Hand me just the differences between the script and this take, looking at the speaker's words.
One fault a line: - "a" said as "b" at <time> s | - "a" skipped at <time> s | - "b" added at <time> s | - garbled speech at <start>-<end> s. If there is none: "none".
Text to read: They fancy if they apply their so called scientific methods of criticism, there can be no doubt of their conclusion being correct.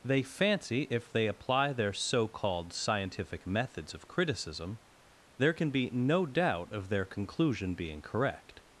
none